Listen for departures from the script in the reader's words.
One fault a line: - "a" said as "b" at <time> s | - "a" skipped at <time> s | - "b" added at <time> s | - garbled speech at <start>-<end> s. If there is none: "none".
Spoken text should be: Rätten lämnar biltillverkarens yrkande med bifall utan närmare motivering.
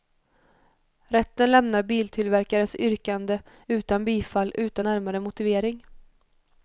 - "med" said as "utan" at 3.7 s